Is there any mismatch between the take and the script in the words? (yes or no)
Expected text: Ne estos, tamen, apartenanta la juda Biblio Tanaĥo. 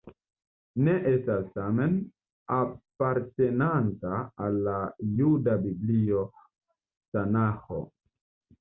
yes